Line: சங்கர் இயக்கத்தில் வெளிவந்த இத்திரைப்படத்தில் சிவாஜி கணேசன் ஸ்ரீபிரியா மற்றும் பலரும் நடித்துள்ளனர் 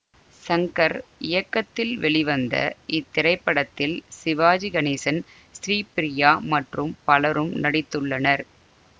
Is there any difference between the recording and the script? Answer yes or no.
no